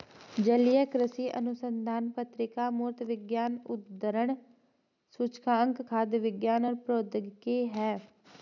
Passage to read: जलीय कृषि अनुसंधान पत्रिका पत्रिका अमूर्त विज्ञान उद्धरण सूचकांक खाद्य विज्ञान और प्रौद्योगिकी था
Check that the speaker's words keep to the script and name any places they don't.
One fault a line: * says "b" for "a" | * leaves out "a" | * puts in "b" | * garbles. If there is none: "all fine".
* leaves out "पत्रिका"
* says "है" for "था"